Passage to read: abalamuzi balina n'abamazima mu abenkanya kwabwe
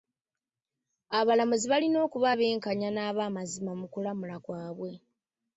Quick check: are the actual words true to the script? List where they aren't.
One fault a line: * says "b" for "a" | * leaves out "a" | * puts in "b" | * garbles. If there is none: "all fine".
* puts in "okuba abenkanya"
* says "kulamula" for "abenkanya"